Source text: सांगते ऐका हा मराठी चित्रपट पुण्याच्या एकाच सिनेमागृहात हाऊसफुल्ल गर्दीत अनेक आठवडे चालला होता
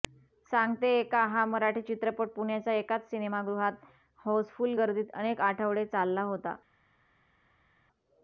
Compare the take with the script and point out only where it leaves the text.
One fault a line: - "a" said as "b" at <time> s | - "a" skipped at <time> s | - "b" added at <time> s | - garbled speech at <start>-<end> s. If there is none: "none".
none